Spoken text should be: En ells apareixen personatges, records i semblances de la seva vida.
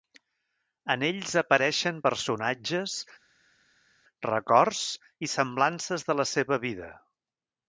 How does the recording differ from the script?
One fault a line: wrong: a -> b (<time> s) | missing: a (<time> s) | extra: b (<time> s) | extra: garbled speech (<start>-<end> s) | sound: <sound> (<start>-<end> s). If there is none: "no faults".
no faults